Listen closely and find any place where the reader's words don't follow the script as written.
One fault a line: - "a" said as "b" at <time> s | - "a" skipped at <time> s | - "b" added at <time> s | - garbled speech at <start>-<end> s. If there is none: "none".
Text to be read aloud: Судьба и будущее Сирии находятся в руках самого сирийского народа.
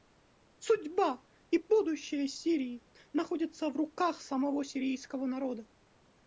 none